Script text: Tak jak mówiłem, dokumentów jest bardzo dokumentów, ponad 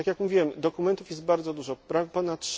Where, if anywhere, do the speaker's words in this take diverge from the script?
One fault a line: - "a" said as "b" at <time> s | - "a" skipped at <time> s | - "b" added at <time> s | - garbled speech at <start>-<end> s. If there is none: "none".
- "dokumentów" said as "dużo" at 1.5 s